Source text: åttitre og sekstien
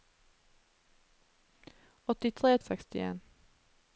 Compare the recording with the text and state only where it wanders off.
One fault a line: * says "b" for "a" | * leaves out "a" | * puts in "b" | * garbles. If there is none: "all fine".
all fine